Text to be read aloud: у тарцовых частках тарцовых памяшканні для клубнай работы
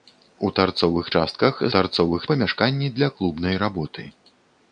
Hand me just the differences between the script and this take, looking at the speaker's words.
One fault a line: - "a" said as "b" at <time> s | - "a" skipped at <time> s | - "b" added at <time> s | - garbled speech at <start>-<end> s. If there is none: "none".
none